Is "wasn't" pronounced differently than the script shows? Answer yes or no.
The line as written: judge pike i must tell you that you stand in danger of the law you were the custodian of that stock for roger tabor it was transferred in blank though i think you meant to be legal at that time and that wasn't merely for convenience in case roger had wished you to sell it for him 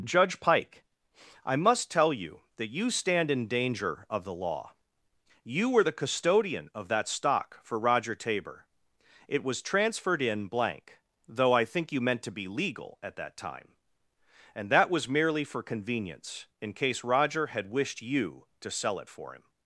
yes